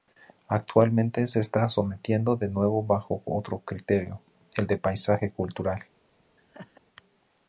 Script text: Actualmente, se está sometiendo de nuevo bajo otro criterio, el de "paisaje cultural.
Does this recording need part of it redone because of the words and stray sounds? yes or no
yes